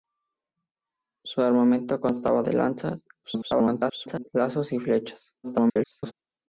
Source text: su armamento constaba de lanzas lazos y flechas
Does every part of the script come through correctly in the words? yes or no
no